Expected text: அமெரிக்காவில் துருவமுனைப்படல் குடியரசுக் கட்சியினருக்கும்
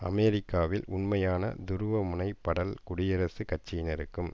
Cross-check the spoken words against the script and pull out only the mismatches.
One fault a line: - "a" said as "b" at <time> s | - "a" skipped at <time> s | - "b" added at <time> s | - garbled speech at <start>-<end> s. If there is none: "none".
- "உண்மையான" added at 0.9 s